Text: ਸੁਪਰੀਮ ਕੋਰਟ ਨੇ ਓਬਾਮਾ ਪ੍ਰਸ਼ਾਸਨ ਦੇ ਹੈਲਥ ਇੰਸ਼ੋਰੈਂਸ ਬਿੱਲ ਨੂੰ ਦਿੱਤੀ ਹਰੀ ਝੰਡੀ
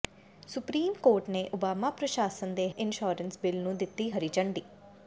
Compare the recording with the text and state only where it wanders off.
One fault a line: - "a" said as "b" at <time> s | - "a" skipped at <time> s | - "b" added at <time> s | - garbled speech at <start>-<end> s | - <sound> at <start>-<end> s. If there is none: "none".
- "ਹੈਲਥ" skipped at 2.7 s